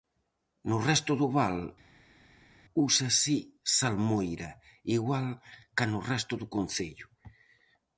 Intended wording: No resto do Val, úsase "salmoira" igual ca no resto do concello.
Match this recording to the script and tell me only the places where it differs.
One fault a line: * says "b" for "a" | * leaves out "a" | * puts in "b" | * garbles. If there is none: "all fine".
all fine